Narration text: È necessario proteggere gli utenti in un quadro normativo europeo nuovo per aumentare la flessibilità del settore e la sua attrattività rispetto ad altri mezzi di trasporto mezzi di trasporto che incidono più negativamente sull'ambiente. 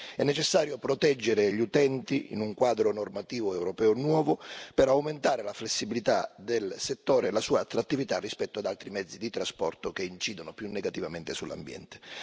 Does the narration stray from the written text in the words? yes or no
yes